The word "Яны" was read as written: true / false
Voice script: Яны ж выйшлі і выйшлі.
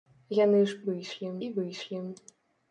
true